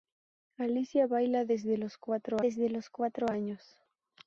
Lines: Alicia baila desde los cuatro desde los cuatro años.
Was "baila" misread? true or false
false